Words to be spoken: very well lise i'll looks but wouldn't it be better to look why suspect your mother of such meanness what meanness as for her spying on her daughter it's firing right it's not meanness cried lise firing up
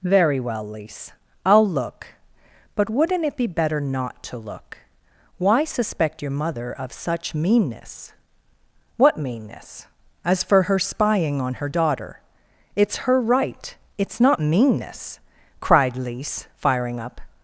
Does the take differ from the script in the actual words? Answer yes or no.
yes